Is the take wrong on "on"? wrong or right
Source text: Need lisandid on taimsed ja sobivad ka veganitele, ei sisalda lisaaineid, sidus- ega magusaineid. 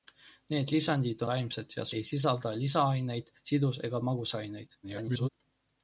wrong